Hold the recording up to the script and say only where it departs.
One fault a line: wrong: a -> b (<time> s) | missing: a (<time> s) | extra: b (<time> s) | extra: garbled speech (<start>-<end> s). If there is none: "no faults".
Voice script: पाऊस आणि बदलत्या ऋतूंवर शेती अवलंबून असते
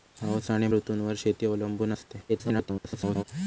missing: बदलत्या (0.7 s)
extra: garbled speech (2.3-3.2 s)